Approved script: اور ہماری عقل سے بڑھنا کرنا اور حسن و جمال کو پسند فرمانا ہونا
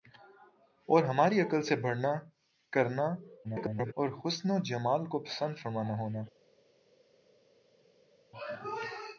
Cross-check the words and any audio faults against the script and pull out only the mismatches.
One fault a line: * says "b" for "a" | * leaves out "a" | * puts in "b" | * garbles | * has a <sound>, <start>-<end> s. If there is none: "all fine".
* garbles